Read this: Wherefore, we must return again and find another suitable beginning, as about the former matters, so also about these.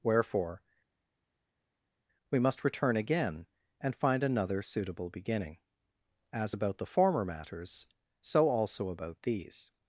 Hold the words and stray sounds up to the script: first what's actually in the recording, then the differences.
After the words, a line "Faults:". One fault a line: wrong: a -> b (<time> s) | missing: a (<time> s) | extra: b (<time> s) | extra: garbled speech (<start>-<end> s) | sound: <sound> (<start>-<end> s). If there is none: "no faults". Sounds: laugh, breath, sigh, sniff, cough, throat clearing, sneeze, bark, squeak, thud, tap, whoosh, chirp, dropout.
Wherefore, we must return again and find another suitable beginning, as about the former matters, so also about these.
Faults:
no faults